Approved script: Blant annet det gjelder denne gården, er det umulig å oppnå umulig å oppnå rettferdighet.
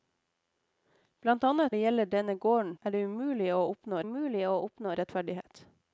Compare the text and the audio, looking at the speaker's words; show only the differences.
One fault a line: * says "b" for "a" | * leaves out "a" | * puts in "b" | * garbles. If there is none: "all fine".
all fine